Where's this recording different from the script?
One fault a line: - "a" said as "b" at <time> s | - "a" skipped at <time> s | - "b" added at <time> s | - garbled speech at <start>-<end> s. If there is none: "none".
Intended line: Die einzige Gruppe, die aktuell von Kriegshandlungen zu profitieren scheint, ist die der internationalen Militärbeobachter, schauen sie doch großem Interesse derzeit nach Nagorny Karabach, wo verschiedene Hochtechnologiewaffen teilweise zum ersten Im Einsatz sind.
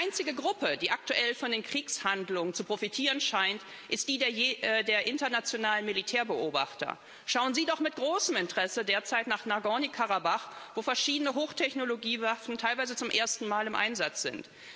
- "den" added at 1.5 s
- "mit" added at 7.8 s
- "Mal" added at 13.5 s